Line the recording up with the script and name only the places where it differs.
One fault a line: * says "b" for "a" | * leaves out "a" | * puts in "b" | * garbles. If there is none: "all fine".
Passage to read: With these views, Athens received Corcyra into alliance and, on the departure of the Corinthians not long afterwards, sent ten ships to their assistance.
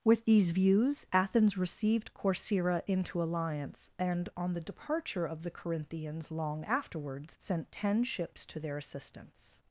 * leaves out "not"